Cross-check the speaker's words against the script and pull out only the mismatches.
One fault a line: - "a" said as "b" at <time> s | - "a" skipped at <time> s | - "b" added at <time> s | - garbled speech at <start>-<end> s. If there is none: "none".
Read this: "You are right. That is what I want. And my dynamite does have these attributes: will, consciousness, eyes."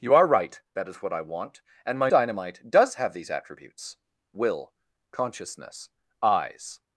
none